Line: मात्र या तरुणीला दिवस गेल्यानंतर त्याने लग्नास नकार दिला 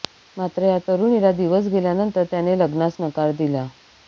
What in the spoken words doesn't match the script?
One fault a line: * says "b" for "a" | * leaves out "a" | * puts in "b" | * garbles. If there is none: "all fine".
all fine